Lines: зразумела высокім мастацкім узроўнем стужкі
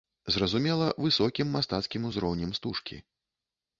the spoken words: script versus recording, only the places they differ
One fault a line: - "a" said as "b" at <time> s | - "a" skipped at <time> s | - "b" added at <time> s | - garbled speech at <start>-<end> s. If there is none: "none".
none